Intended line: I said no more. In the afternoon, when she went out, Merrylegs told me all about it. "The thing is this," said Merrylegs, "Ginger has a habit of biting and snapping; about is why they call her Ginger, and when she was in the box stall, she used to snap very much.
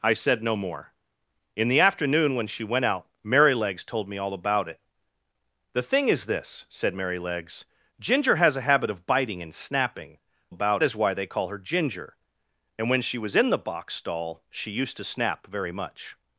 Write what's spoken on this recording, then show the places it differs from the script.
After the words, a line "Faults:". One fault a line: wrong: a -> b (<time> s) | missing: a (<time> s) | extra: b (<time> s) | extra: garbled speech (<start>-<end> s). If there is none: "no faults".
I said no more. In the afternoon, when she went out, Merrylegs told me all about it. "The thing is this," said Merrylegs, "Ginger has a habit of biting and snapping; about is why they call her Ginger, and when she was in the box stall, she used to snap very much.
Faults:
no faults